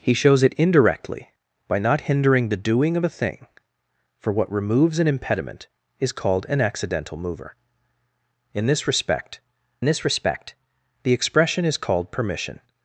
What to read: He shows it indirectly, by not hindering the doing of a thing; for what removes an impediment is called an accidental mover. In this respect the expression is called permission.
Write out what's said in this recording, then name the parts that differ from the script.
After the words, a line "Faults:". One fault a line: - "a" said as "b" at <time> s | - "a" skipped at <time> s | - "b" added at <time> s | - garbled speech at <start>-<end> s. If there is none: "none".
He shows it indirectly, by not hindering the doing of a thing; for what removes an impediment is called an accidental mover. In this respect this respect the expression is called permission.
Faults:
- "this respect" added at 9.8 s